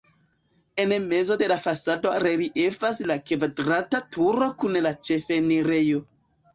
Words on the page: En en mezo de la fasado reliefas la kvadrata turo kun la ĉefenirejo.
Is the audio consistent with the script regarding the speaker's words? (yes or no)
no